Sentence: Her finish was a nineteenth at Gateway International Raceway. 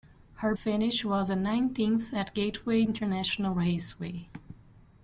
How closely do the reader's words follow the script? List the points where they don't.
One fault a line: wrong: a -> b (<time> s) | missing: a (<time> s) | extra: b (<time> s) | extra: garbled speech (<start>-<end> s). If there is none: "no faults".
no faults